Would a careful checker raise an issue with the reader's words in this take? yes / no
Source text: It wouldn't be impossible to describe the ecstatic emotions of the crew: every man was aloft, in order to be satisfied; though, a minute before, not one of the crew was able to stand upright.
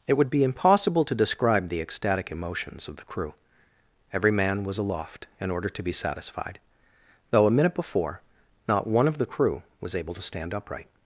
yes